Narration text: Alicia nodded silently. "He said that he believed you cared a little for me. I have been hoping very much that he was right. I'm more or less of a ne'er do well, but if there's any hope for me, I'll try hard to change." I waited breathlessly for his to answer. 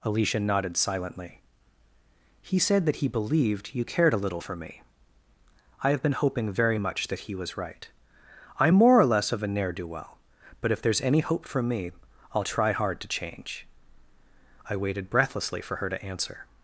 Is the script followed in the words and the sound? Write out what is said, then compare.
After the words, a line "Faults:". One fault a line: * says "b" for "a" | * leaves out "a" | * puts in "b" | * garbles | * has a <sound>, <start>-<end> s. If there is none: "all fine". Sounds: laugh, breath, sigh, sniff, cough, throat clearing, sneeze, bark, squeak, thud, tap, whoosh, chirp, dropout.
Alicia nodded silently. "He said that he believed you cared a little for me. I have been hoping very much that he was right. I'm more or less of a ne'er do well, but if there's any hope for me, I'll try hard to change." I waited breathlessly for her to answer.
Faults:
* says "her" for "his"